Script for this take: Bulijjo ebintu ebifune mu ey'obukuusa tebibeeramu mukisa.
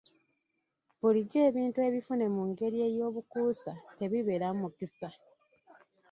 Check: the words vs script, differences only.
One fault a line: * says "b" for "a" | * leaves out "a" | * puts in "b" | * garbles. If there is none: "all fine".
* puts in "ngeri"